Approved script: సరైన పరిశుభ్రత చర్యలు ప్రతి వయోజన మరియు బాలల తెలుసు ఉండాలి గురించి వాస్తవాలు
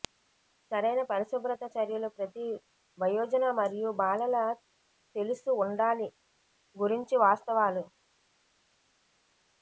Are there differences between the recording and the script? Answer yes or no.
no